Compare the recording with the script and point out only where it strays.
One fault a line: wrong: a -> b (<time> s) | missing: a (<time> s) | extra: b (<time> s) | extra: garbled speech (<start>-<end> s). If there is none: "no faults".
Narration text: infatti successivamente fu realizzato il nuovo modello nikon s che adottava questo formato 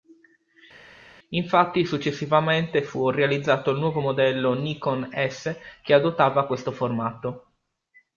no faults